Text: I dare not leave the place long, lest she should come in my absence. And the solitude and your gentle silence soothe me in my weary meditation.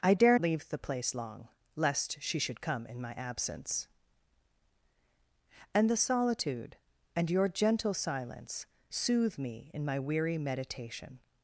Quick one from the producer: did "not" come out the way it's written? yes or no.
no